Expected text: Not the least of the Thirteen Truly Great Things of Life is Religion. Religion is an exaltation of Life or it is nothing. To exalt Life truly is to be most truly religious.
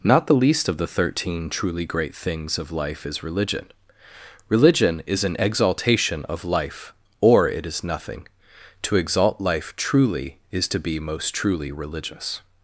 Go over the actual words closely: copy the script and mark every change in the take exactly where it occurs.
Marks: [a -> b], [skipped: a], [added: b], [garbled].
Not the least of the Thirteen Truly Great Things of Life is Religion. Religion is an exaltation of Life or it is nothing. To exalt Life truly is to be most truly religious.